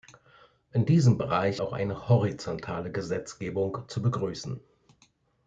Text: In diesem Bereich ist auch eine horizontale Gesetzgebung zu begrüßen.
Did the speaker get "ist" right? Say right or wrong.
wrong